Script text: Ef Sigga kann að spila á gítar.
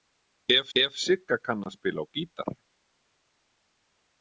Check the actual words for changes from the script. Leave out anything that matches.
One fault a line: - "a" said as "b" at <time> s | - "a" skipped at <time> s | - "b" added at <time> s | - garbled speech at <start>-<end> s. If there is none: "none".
- "ef" added at 0.8 s